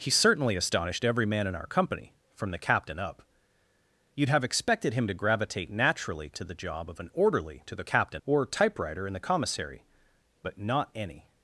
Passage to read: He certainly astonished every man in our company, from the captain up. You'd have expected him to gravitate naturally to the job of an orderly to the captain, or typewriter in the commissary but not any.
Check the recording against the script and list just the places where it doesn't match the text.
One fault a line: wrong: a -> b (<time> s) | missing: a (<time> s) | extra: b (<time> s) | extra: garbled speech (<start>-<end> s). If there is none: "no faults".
no faults